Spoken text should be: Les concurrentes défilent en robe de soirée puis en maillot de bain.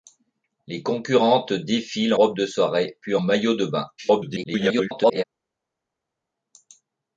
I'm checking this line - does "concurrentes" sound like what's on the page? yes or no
yes